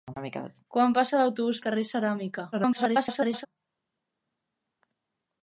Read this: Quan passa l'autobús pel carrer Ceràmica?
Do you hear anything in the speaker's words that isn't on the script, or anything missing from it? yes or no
yes